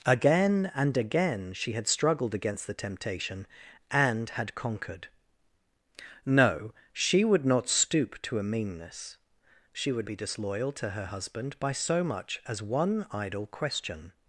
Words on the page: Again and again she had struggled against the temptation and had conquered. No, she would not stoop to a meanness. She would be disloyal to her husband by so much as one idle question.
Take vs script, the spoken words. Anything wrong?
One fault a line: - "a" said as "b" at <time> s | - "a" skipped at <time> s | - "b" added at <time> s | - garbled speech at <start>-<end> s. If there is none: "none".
none